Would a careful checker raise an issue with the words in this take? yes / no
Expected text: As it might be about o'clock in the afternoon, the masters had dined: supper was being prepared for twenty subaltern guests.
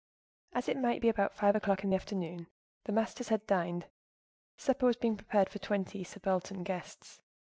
yes